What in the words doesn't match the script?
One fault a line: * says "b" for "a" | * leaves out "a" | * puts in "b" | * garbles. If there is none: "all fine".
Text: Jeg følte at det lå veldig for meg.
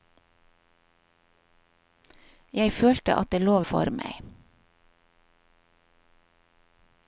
* leaves out "veldig"